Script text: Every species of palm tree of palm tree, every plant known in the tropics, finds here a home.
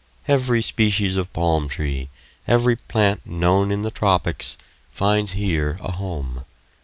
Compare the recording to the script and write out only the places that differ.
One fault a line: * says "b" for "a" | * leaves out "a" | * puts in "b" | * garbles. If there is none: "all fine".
* leaves out "of palm tree"